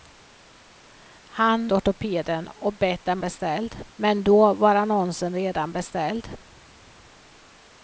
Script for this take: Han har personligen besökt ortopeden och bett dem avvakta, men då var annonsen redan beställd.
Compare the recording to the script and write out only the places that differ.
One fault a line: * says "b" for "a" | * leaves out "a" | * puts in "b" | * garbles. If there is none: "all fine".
* leaves out "har personligen besökt"
* says "beställd" for "avvakta"